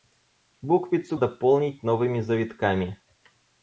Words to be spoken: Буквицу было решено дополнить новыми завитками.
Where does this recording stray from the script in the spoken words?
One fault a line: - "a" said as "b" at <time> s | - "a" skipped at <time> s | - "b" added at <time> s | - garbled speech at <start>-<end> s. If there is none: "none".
- "было решено" skipped at 1.1 s